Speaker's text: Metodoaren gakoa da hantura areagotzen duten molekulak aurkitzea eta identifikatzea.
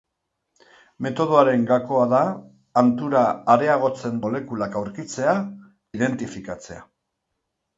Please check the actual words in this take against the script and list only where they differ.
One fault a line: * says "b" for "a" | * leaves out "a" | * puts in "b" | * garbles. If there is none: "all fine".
* leaves out "duten"
* leaves out "eta"